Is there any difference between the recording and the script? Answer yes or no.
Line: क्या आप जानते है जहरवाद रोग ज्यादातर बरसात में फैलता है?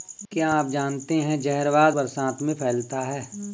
yes